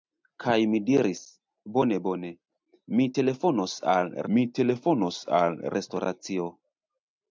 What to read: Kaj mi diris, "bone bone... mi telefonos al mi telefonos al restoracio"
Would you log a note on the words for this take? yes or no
no